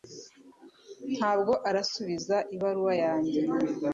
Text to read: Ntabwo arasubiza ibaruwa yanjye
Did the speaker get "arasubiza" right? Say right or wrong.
right